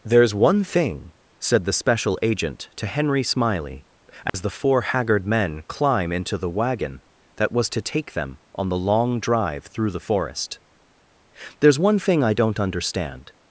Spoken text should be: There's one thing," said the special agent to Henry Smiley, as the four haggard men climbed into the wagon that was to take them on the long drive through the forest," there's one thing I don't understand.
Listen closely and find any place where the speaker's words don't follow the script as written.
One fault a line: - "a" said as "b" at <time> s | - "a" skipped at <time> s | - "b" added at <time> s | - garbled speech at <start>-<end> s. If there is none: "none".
- "climbed" said as "climb" at 5.7 s